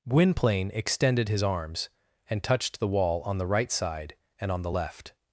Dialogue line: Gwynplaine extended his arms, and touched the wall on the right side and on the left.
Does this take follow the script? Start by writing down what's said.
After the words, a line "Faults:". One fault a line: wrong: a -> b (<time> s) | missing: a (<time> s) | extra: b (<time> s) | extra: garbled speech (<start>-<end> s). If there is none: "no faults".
Gwynplaine extended his arms, and touched the wall on the right side and on the left.
Faults:
no faults